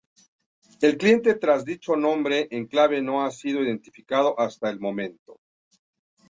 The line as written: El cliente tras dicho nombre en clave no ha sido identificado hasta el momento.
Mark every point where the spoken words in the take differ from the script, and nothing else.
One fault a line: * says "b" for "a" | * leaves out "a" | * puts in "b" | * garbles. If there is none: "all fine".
all fine